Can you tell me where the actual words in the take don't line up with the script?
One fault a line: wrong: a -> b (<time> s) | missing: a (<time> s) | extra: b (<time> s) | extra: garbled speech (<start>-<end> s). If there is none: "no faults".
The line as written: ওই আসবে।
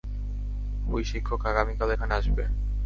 extra: শিক্ষক আগামীকাল এখানে (1.1 s)